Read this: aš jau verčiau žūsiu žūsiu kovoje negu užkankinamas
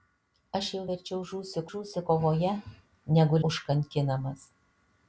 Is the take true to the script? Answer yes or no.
yes